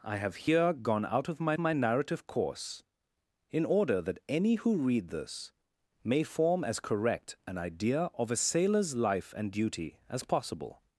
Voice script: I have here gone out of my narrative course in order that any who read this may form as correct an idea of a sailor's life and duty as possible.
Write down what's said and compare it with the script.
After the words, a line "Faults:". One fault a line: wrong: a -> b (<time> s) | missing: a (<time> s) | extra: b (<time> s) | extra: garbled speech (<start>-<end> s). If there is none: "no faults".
I have here gone out of my my narrative course in order that any who read this may form as correct an idea of a sailor's life and duty as possible.
Faults:
extra: my (1.6 s)